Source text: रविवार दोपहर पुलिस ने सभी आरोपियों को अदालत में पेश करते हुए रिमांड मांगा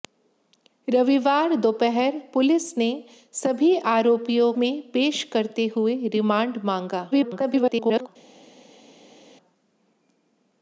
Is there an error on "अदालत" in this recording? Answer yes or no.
yes